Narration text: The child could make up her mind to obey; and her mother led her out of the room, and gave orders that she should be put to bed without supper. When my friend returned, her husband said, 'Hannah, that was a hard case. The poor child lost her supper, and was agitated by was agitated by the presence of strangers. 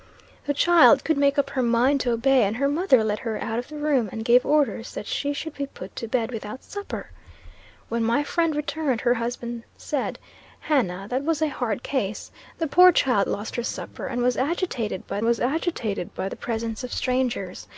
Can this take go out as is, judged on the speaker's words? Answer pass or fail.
pass